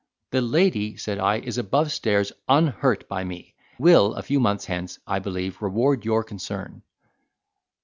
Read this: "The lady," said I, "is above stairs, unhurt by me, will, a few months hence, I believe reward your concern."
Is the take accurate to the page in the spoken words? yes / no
yes